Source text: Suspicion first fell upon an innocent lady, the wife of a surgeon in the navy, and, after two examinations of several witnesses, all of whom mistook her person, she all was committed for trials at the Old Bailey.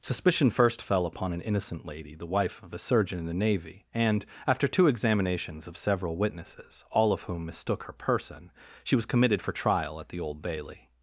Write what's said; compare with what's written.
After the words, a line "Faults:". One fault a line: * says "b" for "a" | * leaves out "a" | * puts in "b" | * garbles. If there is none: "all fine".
Suspicion first fell upon an innocent lady, the wife of a surgeon in the navy, and, after two examinations of several witnesses, all of whom mistook her person, she was committed for trial at the Old Bailey.
Faults:
* leaves out "all"
* says "trial" for "trials"